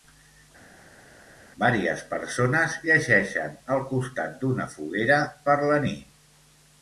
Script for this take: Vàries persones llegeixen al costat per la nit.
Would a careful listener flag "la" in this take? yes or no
no